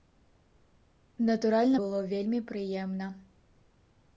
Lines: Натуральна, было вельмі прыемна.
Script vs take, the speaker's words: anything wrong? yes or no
no